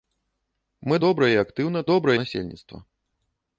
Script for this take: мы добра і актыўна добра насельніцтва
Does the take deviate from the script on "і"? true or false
false